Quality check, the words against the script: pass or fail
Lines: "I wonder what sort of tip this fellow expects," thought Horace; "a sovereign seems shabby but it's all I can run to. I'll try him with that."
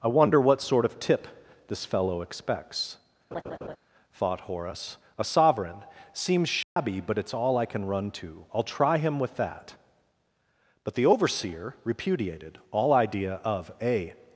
fail